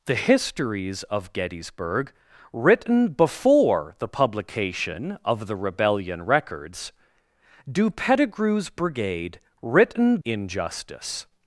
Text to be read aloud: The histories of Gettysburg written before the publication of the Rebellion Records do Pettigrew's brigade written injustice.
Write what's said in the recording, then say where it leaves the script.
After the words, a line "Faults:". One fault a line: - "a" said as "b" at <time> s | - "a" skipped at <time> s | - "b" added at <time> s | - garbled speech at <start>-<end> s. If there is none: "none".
The histories of Gettysburg written before the publication of the Rebellion Records do Pettigrew's brigade written injustice.
Faults:
none